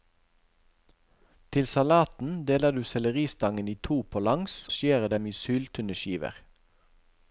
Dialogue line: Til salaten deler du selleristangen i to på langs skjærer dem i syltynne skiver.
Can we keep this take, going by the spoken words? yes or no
yes